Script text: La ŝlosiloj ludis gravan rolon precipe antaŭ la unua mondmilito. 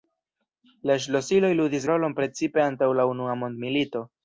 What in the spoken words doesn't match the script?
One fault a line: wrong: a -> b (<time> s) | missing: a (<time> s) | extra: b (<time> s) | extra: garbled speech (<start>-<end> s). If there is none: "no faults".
missing: gravan (1.9 s)